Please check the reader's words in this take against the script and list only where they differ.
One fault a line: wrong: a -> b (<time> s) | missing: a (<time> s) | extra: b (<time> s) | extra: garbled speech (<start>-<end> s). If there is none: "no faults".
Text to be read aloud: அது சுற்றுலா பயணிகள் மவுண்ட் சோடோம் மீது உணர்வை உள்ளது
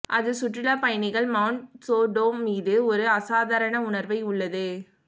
extra: ஒரு அசாதாரண (2.9 s)